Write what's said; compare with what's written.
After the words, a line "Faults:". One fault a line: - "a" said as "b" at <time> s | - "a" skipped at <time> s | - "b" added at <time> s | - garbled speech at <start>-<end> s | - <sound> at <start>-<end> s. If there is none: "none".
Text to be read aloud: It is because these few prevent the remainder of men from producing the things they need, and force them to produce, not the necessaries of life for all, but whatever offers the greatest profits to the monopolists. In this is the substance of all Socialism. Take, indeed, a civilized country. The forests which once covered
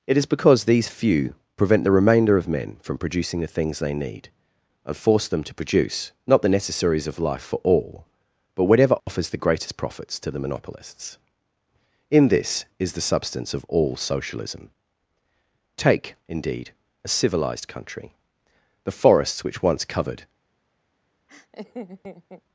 It is because these few prevent the remainder of men from producing the things they need, and force them to produce, not the necessaries of life for all, but whatever offers the greatest profits to the monopolists. In this is the substance of all Socialism. Take, indeed, a civilized country. The forests which once covered
Faults:
- dropout at 9.0-9.1 s
- laugh at 21.3-22.4 s